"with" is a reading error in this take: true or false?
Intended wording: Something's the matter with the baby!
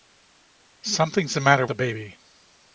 true